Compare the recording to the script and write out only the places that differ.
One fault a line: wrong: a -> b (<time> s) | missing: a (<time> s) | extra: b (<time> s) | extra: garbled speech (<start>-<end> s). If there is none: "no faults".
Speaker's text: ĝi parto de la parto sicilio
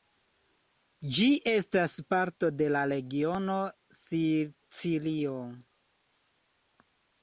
extra: estas (1.5 s)
wrong: parto -> regiono (2.9 s)